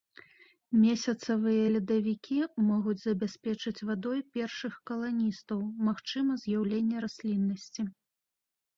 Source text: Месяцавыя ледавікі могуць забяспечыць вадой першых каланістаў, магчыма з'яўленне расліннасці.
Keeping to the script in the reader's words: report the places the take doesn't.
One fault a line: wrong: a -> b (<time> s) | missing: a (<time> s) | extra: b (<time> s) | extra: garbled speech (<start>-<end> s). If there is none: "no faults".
no faults